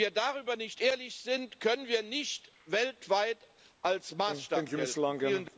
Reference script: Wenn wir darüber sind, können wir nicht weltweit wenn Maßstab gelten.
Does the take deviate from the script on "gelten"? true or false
false